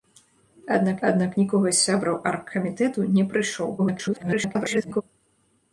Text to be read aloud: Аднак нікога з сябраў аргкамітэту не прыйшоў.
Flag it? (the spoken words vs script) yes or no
yes